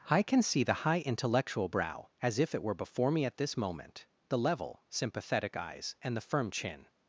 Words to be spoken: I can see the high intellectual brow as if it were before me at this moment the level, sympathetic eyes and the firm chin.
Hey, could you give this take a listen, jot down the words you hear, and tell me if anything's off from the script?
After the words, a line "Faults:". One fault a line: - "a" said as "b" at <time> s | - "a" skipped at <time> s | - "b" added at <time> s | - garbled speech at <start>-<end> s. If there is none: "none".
I can see the high intellectual brow as if it were before me at this moment the level, sympathetic eyes and the firm chin.
Faults:
none